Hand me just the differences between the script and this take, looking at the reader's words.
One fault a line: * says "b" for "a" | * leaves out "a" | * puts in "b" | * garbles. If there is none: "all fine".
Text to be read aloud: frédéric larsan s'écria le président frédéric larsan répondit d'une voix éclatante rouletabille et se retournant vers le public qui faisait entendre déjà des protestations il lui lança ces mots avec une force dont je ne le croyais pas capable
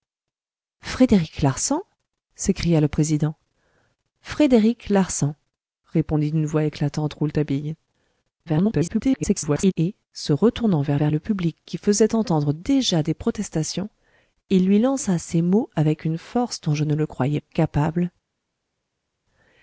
* garbles
* puts in "vers"
* leaves out "pas"